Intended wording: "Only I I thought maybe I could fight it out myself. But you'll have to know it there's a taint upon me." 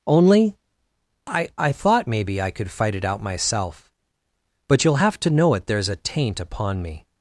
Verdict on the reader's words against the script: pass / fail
pass